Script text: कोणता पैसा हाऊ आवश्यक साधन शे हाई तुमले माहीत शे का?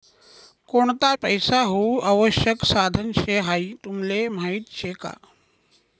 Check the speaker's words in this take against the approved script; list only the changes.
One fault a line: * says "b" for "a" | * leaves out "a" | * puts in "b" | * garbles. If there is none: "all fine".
all fine